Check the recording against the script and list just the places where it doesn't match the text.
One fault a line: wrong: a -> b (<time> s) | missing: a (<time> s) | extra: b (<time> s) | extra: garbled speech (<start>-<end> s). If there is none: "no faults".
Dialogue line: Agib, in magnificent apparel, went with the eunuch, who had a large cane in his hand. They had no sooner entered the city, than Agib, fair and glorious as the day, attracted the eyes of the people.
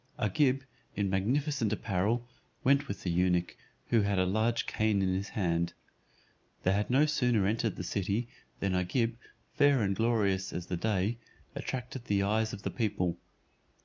no faults